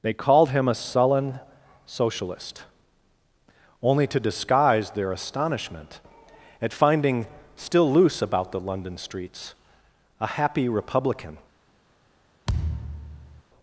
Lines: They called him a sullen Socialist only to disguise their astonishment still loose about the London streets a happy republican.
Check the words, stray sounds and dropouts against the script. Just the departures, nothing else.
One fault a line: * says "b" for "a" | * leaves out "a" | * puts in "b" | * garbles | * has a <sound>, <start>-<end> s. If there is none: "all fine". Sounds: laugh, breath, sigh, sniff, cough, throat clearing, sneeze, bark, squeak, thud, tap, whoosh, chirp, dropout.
* puts in "at finding"
* has a thud, 12.5-13.4 s